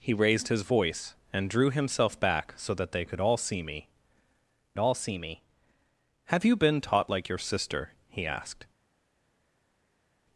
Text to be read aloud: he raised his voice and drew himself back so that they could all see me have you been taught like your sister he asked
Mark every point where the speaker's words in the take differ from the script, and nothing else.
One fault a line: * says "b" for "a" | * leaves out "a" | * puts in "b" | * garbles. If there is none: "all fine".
* puts in "all see me"